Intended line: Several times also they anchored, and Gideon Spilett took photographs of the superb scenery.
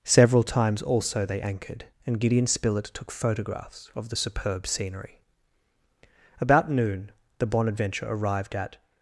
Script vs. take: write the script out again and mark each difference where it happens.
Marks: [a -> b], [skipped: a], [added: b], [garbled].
Several times also they anchored, and Gideon Spilett took photographs of the superb scenery. [added: About noon the Bonadventure arrived at]